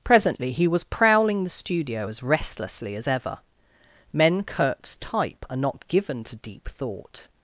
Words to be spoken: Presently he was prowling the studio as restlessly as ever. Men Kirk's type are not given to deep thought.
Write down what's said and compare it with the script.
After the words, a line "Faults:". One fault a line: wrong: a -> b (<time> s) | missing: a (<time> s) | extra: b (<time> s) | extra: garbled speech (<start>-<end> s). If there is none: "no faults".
Presently he was prowling the studio as restlessly as ever. Men Kirk's type are not given to deep thought.
Faults:
no faults